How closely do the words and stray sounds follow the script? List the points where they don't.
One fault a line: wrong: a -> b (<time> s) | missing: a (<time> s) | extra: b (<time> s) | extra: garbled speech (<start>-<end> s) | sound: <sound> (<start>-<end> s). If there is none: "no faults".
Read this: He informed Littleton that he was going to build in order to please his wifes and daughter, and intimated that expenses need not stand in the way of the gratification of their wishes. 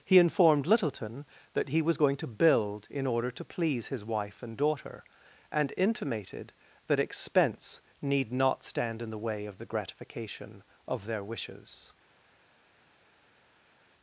wrong: wifes -> wife (4.0 s)
wrong: expenses -> expense (7.0 s)